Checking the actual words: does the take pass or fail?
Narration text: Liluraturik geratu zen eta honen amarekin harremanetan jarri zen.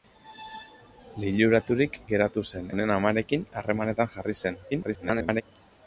fail